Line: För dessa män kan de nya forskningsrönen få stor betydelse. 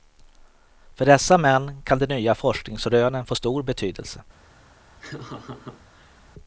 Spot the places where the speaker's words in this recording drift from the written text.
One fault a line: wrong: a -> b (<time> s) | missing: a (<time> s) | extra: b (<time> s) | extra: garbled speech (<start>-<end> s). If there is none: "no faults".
no faults